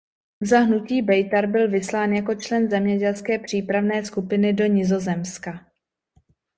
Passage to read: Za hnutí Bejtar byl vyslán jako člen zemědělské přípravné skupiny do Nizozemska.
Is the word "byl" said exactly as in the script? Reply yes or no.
yes